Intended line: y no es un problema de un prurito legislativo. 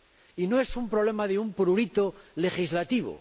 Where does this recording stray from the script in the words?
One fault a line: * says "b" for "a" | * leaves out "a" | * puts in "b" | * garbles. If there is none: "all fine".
all fine